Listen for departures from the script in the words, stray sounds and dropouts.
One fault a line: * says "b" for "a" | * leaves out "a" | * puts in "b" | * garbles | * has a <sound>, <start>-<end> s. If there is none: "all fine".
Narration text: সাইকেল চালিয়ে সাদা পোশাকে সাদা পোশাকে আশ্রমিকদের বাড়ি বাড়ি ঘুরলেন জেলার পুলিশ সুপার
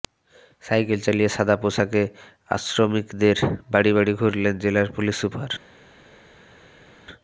* leaves out "সাদা পোশাকে"